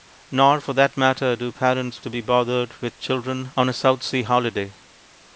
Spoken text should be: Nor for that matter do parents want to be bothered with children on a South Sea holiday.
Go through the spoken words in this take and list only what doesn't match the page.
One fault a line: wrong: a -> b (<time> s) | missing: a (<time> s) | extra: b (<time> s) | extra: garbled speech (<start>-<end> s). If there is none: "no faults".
missing: want (2.0 s)